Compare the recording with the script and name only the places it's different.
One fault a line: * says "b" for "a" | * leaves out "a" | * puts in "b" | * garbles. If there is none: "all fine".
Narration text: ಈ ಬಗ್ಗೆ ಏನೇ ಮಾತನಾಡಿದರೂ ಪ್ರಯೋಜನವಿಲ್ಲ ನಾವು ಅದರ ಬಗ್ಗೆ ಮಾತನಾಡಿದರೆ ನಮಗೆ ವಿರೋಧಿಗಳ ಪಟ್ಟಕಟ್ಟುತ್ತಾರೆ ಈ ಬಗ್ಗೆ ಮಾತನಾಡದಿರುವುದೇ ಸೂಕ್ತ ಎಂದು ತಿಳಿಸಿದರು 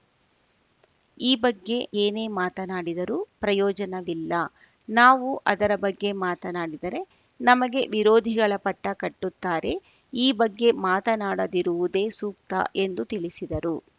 all fine